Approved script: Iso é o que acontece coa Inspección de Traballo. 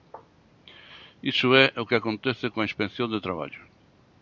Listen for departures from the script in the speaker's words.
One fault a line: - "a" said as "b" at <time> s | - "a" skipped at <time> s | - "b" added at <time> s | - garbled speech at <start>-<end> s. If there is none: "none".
none